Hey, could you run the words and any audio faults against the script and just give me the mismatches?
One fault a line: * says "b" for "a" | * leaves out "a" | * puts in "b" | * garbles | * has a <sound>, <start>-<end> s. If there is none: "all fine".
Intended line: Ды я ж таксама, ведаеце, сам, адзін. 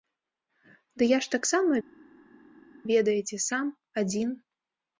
all fine